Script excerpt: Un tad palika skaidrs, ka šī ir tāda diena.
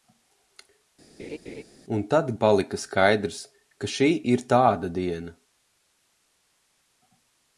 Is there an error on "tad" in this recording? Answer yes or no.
no